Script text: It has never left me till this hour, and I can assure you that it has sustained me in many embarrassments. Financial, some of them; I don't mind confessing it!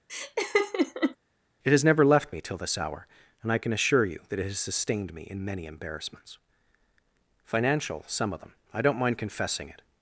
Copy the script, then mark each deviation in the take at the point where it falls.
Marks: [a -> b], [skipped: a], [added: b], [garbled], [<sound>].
[laugh] It has never left me till this hour, and I can assure you that it has sustained me in many embarrassments. Financial, some of them; I don't mind confessing it!